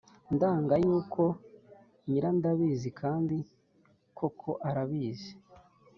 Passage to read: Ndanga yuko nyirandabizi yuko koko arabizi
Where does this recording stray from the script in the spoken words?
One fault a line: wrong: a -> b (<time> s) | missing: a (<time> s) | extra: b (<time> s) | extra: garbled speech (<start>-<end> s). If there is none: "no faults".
wrong: yuko -> kandi (3.0 s)